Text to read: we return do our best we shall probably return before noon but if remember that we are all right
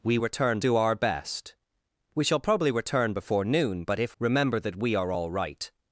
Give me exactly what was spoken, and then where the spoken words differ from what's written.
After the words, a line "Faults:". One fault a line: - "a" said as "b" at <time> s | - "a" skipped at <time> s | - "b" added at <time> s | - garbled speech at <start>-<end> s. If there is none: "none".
we return do our best we shall probably return before noon but if remember that we are all right
Faults:
none